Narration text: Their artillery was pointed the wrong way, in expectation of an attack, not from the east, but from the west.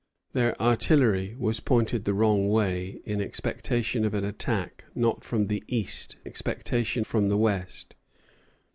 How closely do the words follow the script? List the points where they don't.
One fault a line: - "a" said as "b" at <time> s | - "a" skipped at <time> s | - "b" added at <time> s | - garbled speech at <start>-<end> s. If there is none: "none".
- "but" said as "expectation" at 6.2 s